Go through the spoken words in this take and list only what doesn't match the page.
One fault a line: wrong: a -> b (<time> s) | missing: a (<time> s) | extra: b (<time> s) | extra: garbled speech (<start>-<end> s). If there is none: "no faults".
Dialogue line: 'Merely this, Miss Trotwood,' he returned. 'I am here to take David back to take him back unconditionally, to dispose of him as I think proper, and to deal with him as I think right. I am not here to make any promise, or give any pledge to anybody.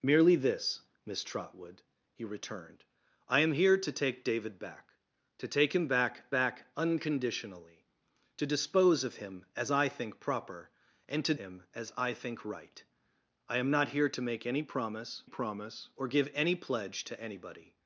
extra: back (6.3 s)
missing: deal with (11.3 s)
extra: promise (15.2 s)